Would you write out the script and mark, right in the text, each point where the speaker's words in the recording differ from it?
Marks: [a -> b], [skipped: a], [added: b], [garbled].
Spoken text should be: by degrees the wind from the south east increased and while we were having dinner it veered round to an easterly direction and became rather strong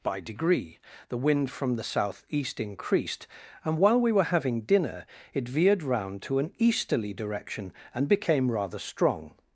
by [degrees -> degree] the wind from the south east increased and while we were having dinner it veered round to an easterly direction and became rather strong